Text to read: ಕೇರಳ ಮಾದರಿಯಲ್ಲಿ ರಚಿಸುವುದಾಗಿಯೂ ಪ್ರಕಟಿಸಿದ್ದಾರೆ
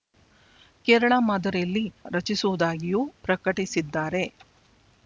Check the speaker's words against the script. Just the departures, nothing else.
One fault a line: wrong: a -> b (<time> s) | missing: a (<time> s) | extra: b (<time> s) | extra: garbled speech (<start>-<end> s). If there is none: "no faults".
no faults